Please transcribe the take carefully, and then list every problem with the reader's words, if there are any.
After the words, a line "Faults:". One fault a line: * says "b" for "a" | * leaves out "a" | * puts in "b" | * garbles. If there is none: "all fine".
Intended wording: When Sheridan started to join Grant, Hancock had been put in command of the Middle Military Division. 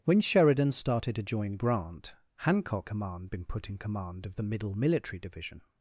When Sheridan started to join Grant, Hancock command been put in command of the Middle Military Division.
Faults:
* says "command" for "had"